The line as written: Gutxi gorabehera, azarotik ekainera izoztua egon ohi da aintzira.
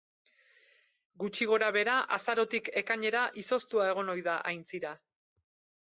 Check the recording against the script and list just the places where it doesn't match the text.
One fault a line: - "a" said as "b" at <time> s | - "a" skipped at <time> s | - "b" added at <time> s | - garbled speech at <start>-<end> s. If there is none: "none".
none